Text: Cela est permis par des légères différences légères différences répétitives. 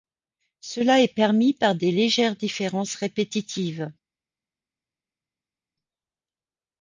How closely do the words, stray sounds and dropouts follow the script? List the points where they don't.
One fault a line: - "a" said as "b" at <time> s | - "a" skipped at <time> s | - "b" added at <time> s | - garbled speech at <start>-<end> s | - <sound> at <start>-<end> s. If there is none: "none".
- "légères différences" skipped at 3.0 s